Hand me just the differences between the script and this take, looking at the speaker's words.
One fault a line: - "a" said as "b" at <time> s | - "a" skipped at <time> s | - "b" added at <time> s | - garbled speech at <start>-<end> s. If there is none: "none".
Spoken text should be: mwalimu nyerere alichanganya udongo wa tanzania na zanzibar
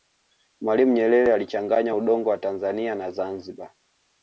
none